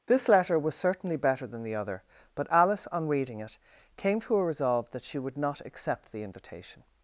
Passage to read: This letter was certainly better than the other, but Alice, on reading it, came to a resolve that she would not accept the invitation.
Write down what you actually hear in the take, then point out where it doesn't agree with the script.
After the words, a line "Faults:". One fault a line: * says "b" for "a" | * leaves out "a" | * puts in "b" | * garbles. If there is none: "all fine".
This letter was certainly better than the other, but Alice, on reading it, came to a resolve that she would not accept the invitation.
Faults:
all fine